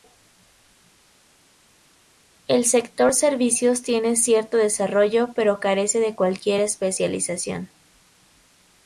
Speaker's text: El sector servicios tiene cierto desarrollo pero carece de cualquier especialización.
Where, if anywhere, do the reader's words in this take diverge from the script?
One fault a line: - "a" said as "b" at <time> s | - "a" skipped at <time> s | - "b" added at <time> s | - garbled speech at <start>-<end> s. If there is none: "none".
none